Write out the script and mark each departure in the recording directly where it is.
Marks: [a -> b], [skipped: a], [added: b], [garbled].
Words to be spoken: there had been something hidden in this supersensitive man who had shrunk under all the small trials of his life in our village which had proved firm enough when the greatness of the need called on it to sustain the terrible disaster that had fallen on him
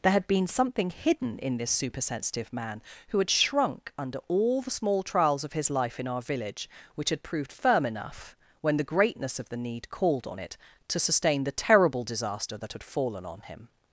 there had been something hidden in this supersensitive man who had shrunk under all the small trials of his life in our village which had proved firm enough when the greatness of the need called on it to sustain the terrible disaster that had fallen on him